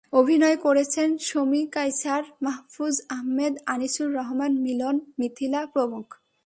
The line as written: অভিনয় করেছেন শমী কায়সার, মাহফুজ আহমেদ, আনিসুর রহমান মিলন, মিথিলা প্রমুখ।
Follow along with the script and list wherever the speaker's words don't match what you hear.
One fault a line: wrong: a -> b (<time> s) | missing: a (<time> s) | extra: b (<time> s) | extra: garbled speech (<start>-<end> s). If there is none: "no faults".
no faults